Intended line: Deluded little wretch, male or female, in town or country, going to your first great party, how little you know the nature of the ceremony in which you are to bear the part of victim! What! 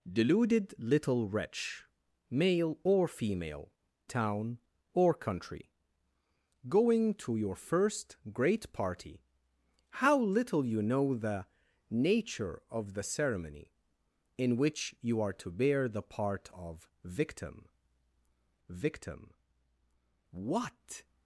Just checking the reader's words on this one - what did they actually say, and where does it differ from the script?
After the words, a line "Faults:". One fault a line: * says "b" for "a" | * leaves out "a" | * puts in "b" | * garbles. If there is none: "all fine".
Deluded little wretch, male or female, town or country, going to your first great party, how little you know the nature of the ceremony in which you are to bear the part of victim victim! What!
Faults:
* leaves out "in"
* puts in "victim"